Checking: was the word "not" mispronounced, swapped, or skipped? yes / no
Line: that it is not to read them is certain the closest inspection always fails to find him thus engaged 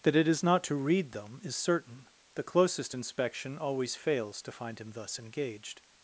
no